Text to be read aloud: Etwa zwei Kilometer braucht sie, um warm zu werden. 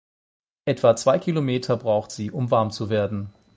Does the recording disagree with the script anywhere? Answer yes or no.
no